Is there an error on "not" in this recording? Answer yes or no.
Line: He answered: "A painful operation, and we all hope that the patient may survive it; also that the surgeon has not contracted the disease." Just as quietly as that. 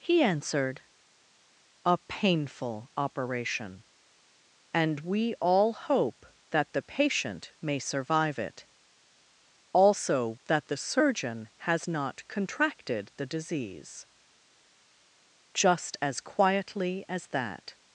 no